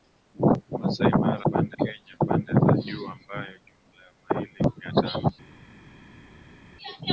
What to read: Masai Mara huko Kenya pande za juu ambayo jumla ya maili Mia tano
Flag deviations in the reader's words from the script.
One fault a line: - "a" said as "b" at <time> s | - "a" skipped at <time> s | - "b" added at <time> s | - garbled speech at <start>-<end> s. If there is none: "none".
- "huko" said as "pande" at 1.5 s